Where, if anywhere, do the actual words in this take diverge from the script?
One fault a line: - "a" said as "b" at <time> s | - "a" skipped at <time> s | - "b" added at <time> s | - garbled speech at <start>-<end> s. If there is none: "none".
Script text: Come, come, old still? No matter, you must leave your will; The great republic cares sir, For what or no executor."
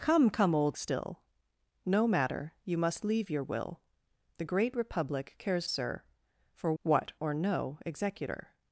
none